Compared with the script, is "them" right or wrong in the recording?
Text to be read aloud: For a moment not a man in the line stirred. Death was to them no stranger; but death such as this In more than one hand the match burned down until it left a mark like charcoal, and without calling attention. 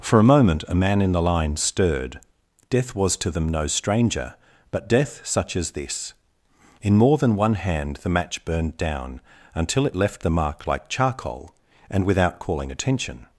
right